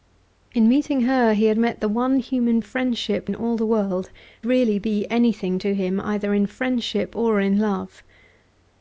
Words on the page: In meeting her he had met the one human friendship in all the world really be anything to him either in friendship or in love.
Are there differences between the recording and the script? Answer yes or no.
no